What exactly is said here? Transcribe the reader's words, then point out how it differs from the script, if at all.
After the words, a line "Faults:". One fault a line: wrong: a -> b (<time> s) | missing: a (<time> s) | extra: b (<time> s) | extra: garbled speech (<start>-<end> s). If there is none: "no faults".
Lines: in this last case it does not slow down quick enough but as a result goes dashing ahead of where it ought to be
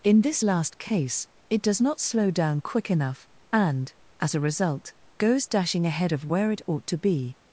in this last case it does not slow down quick enough and as a result goes dashing ahead of where it ought to be
Faults:
wrong: but -> and (3.5 s)